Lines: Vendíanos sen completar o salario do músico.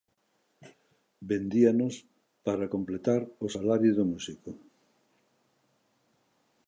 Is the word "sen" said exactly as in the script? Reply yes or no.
no